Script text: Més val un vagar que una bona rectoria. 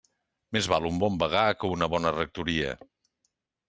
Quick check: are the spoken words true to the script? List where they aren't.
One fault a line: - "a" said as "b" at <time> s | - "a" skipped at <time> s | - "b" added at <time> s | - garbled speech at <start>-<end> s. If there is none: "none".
- "bon" added at 1.0 s